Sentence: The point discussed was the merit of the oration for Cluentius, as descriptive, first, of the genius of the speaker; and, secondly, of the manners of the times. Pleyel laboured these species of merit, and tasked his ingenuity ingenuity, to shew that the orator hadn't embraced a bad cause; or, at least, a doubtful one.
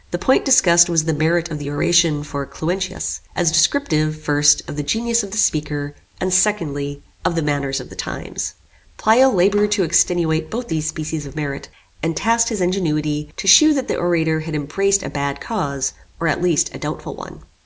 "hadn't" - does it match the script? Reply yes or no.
no